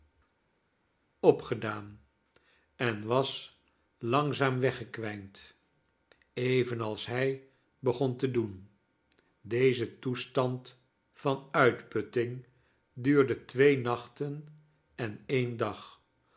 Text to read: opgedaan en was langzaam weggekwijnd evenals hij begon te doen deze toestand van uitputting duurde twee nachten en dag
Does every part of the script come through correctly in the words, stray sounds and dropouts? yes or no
no